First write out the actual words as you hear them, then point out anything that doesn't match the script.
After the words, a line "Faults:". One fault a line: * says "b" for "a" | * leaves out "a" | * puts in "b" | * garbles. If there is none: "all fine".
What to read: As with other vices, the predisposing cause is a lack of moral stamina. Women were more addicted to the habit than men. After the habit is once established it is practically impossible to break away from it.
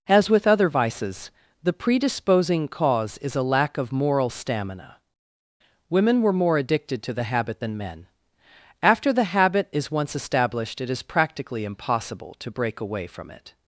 As with other vices, the predisposing cause is a lack of moral stamina. Women were more addicted to the habit than men. After the habit is once established it is practically impossible to break away from it.
Faults:
all fine